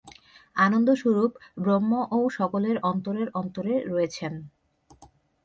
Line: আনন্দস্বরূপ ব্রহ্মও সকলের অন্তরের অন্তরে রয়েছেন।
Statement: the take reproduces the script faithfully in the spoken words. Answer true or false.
true